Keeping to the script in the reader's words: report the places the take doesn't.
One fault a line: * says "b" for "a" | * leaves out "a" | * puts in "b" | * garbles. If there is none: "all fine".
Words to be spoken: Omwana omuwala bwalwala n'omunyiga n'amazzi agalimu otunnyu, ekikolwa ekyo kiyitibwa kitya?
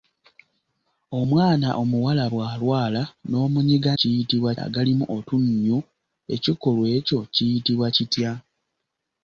* says "kiyitibwa" for "n'amazzi"